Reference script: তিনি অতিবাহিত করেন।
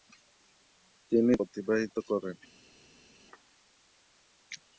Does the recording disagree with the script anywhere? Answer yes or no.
no